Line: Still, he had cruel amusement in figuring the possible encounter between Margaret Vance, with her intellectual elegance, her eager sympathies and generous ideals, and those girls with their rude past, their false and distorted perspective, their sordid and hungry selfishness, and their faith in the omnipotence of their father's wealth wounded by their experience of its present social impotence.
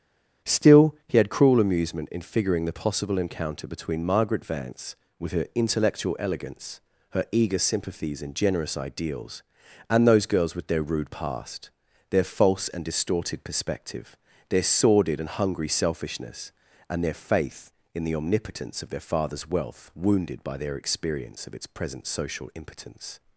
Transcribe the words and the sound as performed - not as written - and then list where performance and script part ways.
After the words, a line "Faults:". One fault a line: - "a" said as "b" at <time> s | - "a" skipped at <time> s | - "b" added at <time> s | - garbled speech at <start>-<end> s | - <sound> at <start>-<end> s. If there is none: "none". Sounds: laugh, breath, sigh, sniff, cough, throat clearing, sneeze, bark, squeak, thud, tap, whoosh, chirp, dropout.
Still, he had cruel amusement in figuring the possible encounter between Margaret Vance, with her intellectual elegance, her eager sympathies and generous ideals, and those girls with their rude past, their false and distorted perspective, their sordid and hungry selfishness, and their faith in the omnipotence of their father's wealth wounded by their experience of its present social impotence.
Faults:
none